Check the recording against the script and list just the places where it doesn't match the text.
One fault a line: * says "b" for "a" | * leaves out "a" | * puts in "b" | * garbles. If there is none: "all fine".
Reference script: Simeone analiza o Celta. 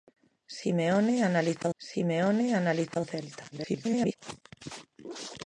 * puts in "simeone analiza"
* garbles